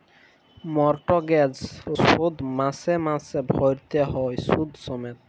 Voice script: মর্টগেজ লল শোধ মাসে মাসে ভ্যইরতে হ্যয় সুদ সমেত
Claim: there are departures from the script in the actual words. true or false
true